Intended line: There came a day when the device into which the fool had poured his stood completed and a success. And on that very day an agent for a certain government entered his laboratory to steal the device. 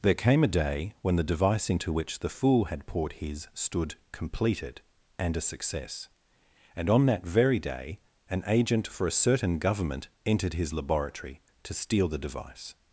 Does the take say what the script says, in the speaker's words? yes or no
yes